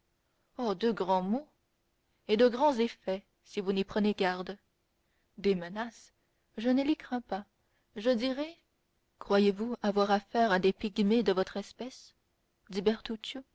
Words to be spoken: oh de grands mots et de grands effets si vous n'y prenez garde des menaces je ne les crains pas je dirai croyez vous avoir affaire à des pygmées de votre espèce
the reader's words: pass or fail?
pass